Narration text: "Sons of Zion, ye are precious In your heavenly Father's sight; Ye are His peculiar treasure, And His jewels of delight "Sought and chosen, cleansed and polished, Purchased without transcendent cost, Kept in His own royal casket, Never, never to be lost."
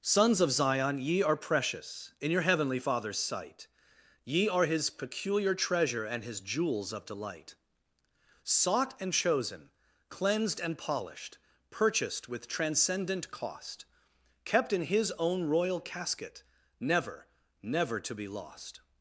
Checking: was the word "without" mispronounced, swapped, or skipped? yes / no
yes